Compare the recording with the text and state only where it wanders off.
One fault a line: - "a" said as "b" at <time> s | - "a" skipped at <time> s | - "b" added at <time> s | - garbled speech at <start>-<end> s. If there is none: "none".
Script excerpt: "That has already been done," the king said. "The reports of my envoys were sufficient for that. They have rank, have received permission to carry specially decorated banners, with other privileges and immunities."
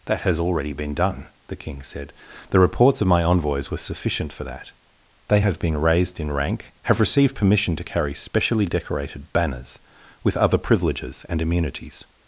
- "been raised in" added at 5.6 s